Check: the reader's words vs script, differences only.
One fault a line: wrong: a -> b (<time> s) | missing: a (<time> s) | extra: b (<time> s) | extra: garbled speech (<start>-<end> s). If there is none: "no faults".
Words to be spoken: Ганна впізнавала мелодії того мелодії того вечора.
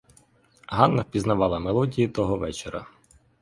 missing: мелодії того (2.4 s)